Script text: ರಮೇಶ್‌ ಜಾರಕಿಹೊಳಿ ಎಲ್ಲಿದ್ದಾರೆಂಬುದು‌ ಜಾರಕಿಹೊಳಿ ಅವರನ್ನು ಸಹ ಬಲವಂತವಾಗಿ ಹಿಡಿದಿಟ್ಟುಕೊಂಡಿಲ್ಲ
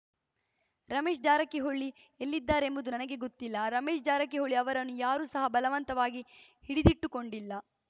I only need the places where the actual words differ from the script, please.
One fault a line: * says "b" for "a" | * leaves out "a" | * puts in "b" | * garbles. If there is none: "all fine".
* puts in "ನನಗೆ ಗೊತ್ತಿಲ್ಲ ರಮೇಶ್"
* puts in "ಯಾರೂ"